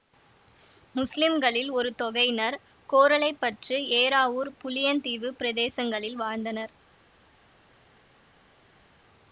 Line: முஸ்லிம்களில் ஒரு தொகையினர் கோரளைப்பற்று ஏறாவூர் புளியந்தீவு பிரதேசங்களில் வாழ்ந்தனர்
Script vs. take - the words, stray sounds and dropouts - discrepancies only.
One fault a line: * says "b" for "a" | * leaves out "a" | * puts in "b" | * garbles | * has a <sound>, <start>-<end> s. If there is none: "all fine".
all fine